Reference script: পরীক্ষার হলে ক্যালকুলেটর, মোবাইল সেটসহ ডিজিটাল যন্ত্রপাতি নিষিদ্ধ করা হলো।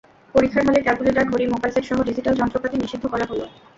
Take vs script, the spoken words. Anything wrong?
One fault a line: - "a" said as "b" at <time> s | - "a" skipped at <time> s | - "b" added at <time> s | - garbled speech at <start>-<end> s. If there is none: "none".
- "ঘড়ি" added at 1.3 s